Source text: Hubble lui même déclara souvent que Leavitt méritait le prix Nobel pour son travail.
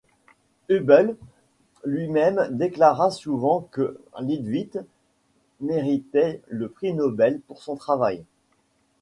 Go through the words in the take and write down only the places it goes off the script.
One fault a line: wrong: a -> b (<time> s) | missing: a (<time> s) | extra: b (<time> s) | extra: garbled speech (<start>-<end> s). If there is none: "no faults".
no faults